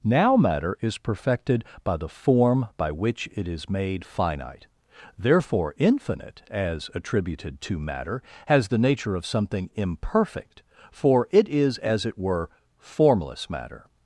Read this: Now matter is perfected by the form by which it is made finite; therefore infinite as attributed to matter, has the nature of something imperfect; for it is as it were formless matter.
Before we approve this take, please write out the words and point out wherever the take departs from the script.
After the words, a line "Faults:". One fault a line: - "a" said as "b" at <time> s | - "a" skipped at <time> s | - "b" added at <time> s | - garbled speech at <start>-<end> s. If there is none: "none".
Now matter is perfected by the form by which it is made finite; therefore infinite as attributed to matter, has the nature of something imperfect; for it is as it were formless matter.
Faults:
none